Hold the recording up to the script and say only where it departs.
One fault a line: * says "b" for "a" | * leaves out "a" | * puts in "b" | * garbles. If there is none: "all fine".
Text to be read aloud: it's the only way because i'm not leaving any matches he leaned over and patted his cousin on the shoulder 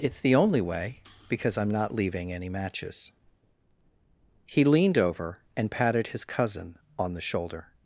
all fine